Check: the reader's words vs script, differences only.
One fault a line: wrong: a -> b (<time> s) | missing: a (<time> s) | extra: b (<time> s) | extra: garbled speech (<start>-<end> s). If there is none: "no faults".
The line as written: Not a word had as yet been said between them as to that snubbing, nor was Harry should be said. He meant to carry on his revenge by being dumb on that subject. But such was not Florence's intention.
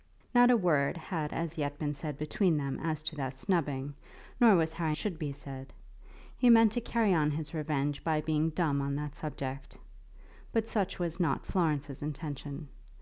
no faults